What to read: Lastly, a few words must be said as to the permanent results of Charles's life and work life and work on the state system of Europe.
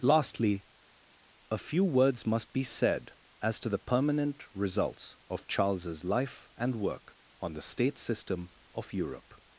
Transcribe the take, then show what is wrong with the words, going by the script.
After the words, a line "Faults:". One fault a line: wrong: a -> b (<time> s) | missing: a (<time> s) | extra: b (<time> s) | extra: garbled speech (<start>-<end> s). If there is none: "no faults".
Lastly, a few words must be said as to the permanent results of Charles's life and work on the state system of Europe.
Faults:
missing: life and work (7.1 s)